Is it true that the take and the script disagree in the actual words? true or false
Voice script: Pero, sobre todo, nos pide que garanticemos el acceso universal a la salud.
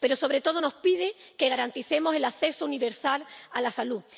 false